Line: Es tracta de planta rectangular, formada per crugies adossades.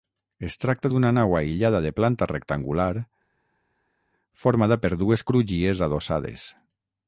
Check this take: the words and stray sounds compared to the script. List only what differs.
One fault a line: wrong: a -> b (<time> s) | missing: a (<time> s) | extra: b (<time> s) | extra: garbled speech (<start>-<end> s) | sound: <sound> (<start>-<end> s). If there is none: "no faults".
extra: d'una nau aïllada (0.9 s)
extra: dues (5.0 s)